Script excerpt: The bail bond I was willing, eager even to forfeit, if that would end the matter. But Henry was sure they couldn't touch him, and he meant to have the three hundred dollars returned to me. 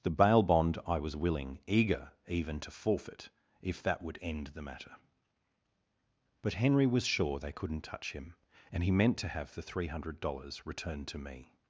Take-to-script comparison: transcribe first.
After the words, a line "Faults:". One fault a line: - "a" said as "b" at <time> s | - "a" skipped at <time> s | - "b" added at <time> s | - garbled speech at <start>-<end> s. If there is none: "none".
The bail bond I was willing, eager even to forfeit, if that would end the matter. But Henry was sure they couldn't touch him, and he meant to have the three hundred dollars returned to me.
Faults:
none